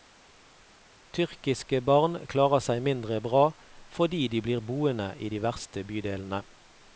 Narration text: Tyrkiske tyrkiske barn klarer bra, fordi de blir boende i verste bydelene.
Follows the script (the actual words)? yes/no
no